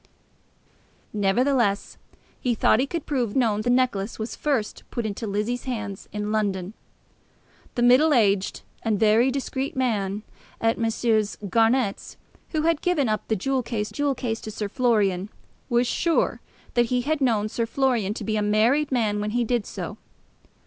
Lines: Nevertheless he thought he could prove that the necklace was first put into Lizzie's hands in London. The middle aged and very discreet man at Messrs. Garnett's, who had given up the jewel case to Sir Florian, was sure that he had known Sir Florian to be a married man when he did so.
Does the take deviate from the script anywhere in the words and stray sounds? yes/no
yes